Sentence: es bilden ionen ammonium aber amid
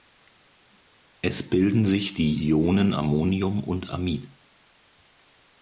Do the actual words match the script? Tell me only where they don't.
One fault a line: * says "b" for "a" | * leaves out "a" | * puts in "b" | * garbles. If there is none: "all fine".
* puts in "sich die"
* says "und" for "aber"